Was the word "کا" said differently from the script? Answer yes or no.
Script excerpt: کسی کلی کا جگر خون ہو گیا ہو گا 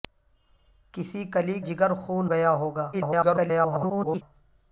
yes